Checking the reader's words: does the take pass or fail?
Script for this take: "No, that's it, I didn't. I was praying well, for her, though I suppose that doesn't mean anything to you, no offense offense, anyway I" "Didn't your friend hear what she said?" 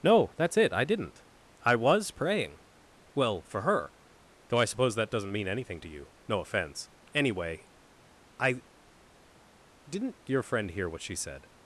fail